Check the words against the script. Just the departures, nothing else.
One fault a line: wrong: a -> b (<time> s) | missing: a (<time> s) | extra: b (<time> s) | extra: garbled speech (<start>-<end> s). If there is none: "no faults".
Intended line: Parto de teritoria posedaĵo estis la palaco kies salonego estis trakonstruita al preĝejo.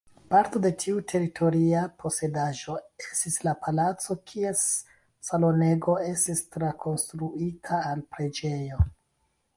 extra: tiu (0.8 s)